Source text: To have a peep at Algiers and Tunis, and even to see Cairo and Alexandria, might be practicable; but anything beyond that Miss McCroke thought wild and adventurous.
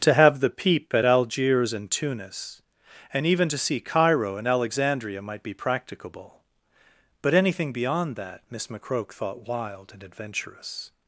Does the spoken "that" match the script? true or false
true